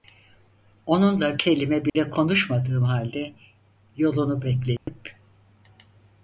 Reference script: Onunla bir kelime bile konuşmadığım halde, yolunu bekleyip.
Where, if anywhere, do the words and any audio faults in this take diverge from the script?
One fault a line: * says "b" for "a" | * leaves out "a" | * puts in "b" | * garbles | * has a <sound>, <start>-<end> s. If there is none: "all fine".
* leaves out "bir"
* has a dropout, 1.9-2.0 s
* has a dropout, 4.8-4.9 s